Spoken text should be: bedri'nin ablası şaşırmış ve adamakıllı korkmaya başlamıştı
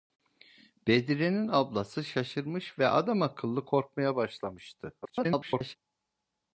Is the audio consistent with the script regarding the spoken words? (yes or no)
no